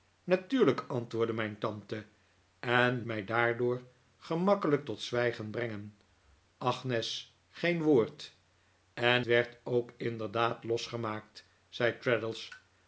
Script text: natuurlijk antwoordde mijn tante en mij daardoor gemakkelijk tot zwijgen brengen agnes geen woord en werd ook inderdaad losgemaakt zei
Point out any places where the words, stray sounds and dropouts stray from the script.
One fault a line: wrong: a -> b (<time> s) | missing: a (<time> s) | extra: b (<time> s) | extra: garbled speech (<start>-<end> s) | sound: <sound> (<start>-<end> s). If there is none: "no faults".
no faults